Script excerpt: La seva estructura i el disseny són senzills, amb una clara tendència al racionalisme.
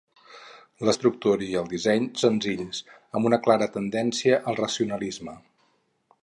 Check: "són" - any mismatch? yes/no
yes